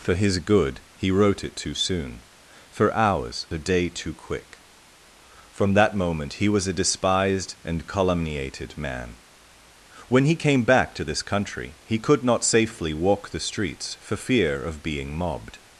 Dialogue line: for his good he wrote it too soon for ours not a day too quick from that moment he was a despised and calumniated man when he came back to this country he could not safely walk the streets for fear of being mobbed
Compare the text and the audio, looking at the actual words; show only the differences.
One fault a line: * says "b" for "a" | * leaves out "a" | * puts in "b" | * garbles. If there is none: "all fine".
* leaves out "not"